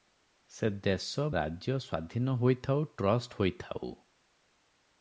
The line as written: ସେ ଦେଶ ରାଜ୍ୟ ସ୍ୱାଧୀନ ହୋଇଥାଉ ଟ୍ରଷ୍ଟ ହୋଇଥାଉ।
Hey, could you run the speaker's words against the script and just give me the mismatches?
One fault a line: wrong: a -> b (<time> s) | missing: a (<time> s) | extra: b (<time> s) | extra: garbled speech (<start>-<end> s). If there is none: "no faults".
no faults